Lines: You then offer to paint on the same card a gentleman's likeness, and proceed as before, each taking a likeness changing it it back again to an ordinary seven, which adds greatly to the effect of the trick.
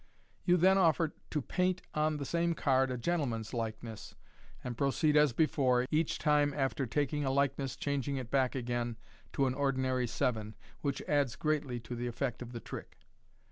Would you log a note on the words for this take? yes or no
yes